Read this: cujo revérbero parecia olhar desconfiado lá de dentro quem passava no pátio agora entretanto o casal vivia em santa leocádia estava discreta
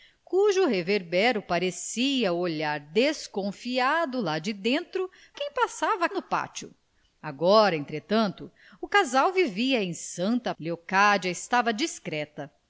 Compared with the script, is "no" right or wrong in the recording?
right